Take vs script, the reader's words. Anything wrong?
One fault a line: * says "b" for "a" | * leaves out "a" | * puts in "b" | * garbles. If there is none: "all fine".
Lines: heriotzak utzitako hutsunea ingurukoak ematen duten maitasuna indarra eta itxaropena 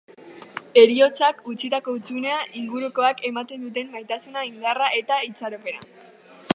all fine